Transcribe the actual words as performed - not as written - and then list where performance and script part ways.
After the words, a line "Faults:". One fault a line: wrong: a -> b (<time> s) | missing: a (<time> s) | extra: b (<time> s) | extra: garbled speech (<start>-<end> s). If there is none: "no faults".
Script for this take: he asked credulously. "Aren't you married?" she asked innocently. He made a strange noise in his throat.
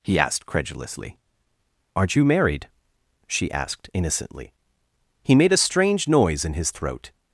he asked credulously. "Aren't you married?" she asked innocently. He made a strange noise in his throat.
Faults:
no faults